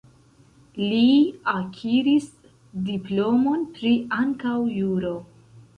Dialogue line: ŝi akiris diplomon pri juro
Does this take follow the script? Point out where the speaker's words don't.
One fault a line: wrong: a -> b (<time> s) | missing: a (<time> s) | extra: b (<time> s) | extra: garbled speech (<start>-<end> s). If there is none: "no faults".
wrong: ŝi -> li (0.8 s)
extra: ankaŭ (4.2 s)